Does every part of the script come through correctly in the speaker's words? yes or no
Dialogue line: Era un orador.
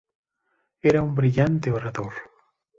no